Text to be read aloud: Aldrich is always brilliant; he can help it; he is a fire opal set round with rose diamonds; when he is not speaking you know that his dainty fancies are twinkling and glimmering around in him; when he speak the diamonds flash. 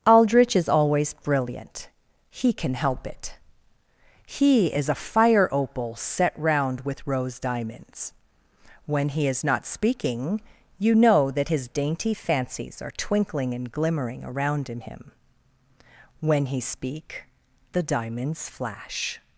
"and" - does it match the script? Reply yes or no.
yes